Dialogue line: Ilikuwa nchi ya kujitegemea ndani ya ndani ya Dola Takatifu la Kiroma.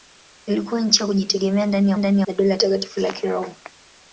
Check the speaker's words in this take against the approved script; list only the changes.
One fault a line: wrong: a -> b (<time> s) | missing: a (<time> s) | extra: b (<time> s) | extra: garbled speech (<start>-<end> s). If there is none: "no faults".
no faults